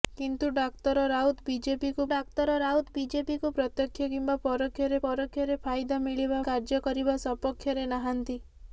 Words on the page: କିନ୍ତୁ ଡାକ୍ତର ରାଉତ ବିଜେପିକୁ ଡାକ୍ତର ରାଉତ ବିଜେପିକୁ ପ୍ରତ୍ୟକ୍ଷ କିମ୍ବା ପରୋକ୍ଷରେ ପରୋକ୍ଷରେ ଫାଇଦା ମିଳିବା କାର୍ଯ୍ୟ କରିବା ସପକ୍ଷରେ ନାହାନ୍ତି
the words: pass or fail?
pass